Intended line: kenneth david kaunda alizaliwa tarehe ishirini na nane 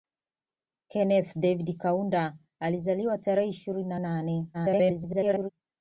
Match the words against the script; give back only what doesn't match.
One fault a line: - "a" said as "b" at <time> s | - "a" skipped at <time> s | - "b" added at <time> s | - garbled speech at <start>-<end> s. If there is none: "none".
- garbled speech at 4.5-5.5 s